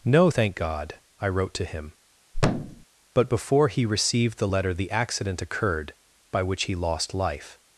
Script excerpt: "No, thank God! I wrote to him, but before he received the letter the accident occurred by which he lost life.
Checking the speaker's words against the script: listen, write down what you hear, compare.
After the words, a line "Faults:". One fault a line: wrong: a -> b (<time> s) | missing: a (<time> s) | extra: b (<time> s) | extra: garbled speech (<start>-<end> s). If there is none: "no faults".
"No, thank God! I wrote to him, but before he received the letter the accident occurred by which he lost life.
Faults:
no faults